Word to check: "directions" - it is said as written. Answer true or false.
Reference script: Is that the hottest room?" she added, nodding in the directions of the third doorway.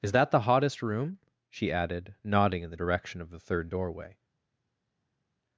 false